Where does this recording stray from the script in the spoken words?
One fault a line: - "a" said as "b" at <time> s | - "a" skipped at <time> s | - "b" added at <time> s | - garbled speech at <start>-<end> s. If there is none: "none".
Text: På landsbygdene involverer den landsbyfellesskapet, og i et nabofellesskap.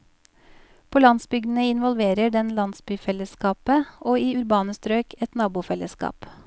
- "urbane strøk" added at 4.4 s